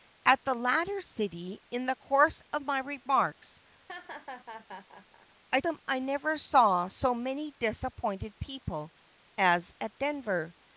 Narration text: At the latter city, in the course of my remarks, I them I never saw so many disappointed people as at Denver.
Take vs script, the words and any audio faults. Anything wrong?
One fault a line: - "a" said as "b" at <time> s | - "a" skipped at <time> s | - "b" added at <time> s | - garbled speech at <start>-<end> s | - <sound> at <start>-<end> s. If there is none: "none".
- laugh at 3.9-5.3 s